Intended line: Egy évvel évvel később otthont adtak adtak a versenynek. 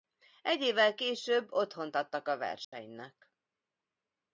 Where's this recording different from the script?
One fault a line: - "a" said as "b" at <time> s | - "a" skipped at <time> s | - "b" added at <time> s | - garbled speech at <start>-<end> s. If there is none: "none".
- "évvel" skipped at 0.9 s
- "adtak" skipped at 2.3 s